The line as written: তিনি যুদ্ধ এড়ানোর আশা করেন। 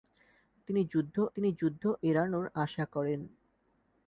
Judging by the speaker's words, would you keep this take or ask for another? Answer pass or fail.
fail